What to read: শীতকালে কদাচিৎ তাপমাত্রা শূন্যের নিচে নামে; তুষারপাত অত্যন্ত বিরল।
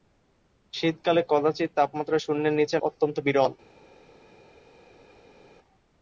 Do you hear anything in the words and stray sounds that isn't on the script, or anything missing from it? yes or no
yes